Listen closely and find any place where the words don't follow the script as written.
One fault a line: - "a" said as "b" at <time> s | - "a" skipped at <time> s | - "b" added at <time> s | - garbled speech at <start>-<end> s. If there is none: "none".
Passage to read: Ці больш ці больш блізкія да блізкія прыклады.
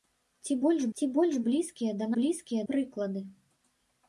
none